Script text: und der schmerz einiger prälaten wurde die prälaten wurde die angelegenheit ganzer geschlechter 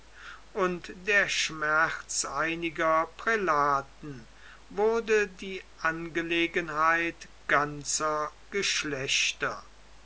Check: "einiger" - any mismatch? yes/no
no